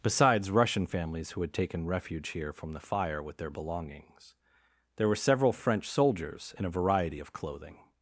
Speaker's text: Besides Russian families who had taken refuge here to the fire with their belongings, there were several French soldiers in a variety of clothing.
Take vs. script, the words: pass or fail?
fail